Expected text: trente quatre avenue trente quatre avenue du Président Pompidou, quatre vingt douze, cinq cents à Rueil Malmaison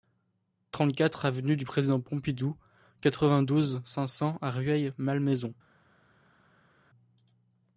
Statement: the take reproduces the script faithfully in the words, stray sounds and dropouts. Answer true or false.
false